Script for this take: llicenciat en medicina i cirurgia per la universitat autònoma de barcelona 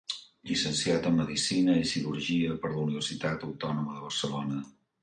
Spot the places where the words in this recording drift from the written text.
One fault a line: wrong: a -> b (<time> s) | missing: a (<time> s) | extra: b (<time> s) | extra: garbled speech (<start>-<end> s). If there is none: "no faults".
no faults